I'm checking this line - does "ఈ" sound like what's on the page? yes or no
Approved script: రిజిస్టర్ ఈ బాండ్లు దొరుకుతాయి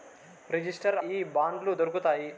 yes